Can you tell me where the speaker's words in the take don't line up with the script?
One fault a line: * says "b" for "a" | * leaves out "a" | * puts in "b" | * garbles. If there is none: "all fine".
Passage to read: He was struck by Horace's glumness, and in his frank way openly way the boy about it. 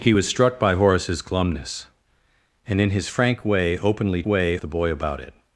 all fine